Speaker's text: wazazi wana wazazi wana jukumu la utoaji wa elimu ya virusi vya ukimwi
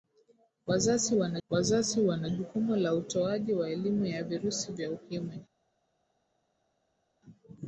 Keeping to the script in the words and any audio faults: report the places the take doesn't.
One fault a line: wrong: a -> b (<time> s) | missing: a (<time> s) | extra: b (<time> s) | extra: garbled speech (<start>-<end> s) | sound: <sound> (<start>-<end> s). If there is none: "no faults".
no faults